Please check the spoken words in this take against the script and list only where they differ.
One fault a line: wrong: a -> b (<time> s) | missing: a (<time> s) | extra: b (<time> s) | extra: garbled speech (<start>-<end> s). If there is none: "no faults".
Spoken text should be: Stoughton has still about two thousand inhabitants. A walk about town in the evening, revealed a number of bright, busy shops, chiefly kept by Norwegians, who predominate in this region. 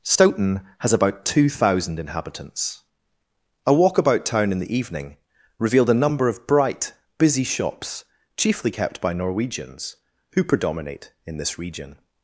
missing: still (0.9 s)